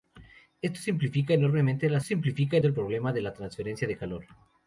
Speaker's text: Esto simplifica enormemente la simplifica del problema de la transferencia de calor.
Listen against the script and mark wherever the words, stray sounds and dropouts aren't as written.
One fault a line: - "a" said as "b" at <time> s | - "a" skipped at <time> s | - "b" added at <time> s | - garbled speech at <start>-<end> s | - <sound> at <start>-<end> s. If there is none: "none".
none